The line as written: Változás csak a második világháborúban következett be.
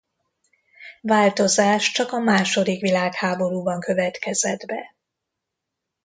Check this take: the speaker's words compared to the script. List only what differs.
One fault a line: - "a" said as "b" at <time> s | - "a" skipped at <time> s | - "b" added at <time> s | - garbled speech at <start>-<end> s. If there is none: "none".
none